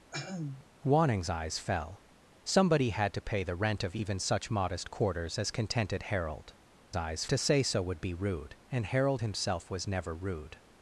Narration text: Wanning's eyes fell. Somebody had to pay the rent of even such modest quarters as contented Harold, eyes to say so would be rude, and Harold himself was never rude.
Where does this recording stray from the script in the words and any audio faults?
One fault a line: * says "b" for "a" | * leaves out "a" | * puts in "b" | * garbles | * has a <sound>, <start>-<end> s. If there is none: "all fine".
* has a throat clearing, 0.1-0.7 s